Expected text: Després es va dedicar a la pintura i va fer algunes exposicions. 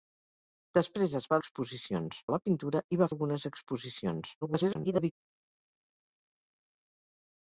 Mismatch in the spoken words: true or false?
true